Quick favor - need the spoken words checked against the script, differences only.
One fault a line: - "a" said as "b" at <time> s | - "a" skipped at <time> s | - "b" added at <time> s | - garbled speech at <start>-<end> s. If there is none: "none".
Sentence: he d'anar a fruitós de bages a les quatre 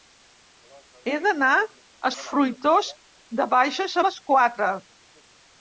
none